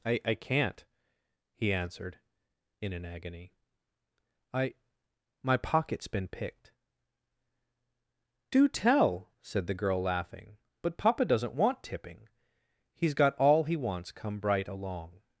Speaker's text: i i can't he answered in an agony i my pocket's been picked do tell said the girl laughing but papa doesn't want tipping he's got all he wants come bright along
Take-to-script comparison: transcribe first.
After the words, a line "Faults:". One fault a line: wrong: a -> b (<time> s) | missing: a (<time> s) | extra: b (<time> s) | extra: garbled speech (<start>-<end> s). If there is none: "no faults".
i i can't he answered in an agony i my pocket's been picked do tell said the girl laughing but papa doesn't want tipping he's got all he wants come bright along
Faults:
no faults